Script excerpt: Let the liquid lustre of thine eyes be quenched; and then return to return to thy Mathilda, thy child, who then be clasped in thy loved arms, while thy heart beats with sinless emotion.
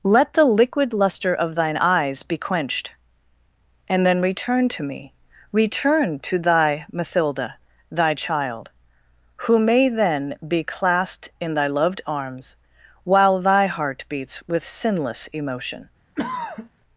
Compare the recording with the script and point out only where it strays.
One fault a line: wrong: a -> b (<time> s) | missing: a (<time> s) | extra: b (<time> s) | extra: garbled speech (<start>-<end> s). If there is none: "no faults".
extra: me (4.8 s)
extra: may (9.6 s)